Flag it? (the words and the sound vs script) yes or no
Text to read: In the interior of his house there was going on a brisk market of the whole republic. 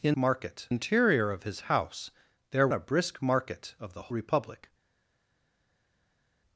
yes